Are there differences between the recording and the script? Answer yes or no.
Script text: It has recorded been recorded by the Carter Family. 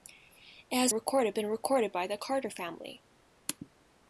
no